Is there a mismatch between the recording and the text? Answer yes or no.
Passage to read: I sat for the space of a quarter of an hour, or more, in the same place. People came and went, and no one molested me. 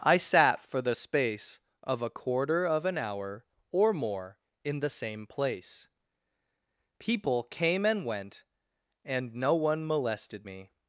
no